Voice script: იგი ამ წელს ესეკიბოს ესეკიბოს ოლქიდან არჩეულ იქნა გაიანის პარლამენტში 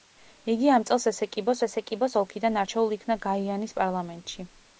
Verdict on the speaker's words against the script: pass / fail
pass